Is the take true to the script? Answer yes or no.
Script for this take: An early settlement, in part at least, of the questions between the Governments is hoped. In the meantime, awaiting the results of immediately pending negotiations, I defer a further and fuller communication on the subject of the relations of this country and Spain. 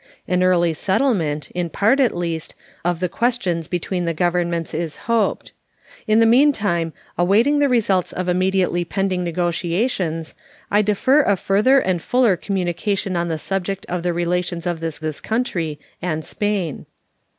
no